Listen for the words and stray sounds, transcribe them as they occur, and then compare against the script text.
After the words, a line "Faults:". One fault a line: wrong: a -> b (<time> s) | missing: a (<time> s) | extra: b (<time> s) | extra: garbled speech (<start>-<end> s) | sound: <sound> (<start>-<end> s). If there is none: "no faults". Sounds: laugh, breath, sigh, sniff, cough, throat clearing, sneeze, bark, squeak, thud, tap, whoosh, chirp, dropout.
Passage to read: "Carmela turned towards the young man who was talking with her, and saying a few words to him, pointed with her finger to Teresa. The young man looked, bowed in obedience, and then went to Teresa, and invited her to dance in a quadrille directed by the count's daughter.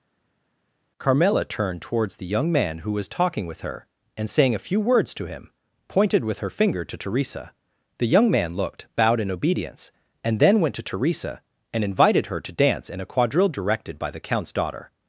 "Carmela turned towards the young man who was talking with her, and saying a few words to him, pointed with her finger to Teresa. The young man looked, bowed in obedience, and then went to Teresa, and invited her to dance in a quadrille directed by the count's daughter.
Faults:
no faults